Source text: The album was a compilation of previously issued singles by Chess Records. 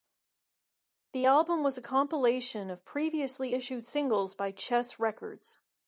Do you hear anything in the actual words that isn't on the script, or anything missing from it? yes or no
no